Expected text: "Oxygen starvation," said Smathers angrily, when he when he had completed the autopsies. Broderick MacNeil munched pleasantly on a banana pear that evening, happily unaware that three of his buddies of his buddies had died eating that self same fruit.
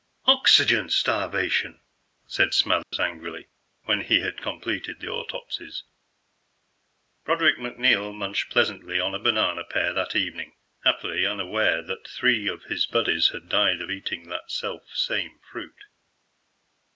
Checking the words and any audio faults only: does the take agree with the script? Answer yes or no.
no